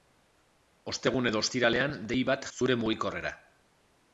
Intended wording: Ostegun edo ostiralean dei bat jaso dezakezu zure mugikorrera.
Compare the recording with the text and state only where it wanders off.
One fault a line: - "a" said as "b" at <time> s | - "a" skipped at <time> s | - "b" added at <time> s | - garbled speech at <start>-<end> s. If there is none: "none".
- "jaso dezakezu" skipped at 2.5 s